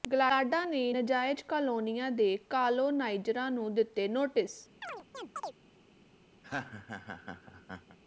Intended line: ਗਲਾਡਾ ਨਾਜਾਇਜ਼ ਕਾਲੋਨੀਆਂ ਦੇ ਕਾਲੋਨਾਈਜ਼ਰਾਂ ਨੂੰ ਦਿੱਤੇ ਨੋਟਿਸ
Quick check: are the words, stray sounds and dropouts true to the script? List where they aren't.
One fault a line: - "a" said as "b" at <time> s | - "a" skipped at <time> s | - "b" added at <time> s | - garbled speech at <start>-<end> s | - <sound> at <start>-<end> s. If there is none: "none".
- "ਨੇ" added at 0.6 s
- chirp at 4.8-5.6 s
- laugh at 6.4-8.0 s